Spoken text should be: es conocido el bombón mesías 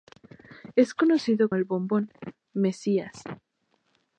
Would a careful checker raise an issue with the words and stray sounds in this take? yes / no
no